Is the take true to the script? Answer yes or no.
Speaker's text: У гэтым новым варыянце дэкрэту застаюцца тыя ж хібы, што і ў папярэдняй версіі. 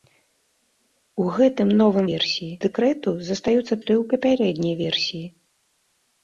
no